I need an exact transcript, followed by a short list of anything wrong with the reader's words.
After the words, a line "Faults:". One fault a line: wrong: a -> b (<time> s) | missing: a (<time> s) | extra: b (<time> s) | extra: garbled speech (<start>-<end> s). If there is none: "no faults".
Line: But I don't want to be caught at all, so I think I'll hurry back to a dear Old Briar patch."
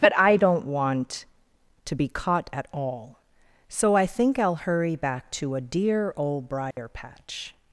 But I don't want to be caught at all, so I think I'll hurry back to a dear Old Briar patch."
Faults:
no faults